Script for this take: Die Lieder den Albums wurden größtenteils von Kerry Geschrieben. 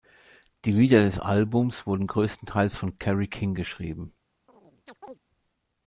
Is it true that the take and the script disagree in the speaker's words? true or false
true